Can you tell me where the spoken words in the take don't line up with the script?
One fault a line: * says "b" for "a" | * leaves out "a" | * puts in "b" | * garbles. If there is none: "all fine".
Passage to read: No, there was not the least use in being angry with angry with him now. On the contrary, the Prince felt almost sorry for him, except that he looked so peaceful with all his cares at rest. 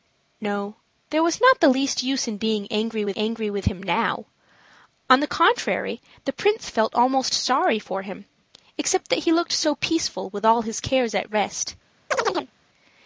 all fine